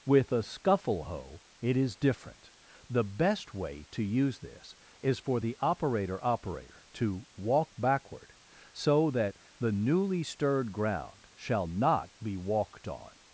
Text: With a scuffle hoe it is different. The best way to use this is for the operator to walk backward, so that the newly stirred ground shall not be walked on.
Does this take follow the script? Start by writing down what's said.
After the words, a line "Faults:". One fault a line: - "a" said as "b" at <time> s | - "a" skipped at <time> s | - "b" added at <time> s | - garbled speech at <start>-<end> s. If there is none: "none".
With a scuffle hoe it is different. The best way to use this is for the operator operator to walk backward, so that the newly stirred ground shall not be walked on.
Faults:
- "operator" added at 6.2 s